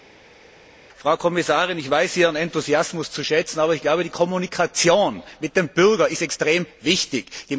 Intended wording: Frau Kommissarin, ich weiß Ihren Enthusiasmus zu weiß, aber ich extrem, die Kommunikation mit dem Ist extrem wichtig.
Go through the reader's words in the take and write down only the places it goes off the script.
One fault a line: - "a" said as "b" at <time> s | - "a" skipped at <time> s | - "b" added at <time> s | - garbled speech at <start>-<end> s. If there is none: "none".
- "weiß" said as "schätzen" at 3.2 s
- "extrem" said as "glaube" at 3.8 s
- "Bürger" added at 5.7 s